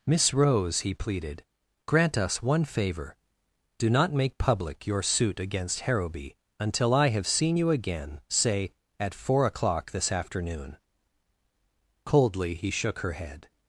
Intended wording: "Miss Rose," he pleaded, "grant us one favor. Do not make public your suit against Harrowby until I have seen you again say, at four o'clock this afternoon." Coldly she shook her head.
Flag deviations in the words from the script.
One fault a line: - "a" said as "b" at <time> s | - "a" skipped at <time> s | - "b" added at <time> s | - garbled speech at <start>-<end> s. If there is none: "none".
- "she" said as "he" at 12.5 s